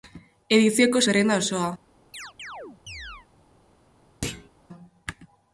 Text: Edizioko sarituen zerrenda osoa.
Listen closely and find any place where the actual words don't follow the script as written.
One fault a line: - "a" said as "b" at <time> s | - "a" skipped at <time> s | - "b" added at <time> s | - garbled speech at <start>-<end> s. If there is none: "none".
- "sarituen" skipped at 1.0 s